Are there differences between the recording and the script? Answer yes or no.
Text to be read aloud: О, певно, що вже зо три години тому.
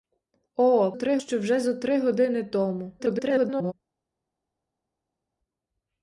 yes